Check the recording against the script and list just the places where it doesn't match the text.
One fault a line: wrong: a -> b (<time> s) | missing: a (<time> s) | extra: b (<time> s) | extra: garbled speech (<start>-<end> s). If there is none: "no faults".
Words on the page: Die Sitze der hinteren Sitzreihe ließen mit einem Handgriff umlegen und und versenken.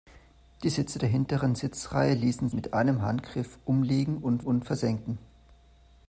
no faults